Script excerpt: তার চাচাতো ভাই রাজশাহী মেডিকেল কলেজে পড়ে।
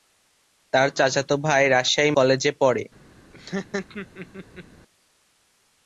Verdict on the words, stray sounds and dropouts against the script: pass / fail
fail